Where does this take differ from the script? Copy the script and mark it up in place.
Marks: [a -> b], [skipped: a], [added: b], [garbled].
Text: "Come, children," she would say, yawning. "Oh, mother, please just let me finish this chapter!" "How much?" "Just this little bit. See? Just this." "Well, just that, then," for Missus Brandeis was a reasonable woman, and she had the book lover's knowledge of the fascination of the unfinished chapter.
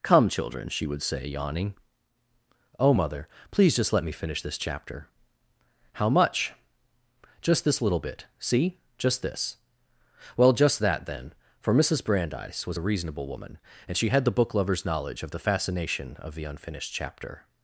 "Come, children," she would say, yawning. "Oh, mother, please just let me finish this chapter!" "How much?" "Just this little bit. See? Just this." "Well, just that, then," for Missus Brandeis was a reasonable woman, and she had the book lover's knowledge of the fascination of the unfinished chapter.